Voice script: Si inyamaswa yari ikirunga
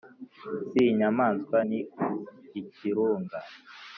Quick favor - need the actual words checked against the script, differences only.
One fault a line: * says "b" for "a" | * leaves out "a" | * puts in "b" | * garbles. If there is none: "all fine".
* says "ni" for "yari"